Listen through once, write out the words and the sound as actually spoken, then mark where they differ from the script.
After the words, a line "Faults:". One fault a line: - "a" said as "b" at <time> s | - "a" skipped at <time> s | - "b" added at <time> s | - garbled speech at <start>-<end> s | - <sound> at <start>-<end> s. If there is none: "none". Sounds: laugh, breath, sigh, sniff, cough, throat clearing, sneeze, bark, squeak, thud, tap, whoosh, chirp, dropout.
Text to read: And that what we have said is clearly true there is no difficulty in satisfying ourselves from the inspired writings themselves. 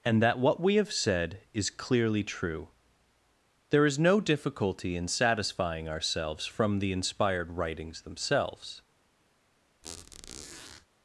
And that what we have said is clearly true there is no difficulty in satisfying ourselves from the inspired writings themselves.
Faults:
- squeak at 9.8-10.9 s